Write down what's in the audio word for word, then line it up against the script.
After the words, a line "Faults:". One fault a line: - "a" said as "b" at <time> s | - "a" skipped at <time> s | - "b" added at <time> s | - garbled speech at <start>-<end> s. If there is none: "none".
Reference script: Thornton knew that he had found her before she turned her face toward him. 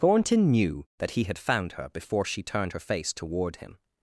Thornton knew that he had found her before she turned her face toward him.
Faults:
none